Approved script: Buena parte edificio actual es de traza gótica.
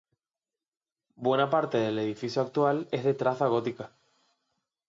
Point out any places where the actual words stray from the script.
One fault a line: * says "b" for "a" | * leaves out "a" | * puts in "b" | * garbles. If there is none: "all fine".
* puts in "del"